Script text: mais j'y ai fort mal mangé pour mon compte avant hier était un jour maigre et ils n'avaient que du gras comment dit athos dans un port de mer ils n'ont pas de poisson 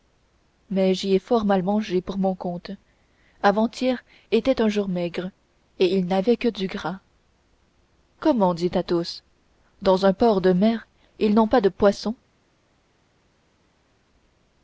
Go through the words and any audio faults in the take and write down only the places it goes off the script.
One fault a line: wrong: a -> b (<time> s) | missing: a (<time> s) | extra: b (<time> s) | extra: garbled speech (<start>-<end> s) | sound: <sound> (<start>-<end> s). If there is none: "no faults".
no faults